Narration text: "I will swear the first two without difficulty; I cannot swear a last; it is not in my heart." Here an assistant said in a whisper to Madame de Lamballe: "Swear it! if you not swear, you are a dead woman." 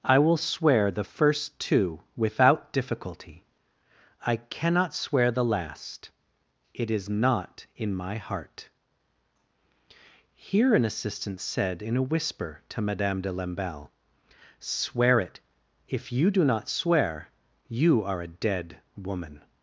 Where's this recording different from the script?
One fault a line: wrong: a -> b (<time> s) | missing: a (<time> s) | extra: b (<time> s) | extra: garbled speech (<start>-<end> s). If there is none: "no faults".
wrong: a -> the (5.3 s)
extra: do (16.3 s)